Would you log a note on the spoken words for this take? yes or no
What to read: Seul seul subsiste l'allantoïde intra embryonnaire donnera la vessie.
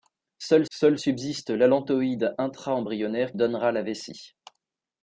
no